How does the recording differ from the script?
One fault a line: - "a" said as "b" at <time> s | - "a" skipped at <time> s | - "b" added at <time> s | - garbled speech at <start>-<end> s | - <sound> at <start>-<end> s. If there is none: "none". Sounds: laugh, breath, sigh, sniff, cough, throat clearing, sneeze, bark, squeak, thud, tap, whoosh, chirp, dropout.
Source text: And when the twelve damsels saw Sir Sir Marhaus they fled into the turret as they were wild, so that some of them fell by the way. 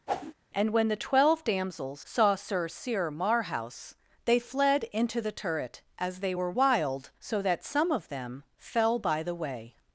- whoosh at 0.1-0.3 s